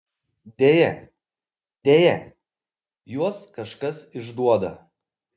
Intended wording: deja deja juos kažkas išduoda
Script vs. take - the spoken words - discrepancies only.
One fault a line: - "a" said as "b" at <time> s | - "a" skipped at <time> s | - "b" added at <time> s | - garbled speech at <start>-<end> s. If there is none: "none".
none